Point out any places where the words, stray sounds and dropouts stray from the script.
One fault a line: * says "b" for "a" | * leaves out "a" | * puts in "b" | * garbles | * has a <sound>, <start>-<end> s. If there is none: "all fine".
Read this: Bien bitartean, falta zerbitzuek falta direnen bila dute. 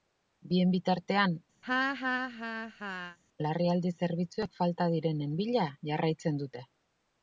* has a laugh, 1.6-3.2 s
* says "larrialdi" for "falta"
* puts in "jarraitzen"